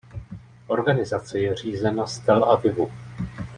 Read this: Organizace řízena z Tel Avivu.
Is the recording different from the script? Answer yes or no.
yes